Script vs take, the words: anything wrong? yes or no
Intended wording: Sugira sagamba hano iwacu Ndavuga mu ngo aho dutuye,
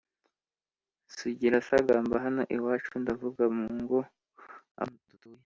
no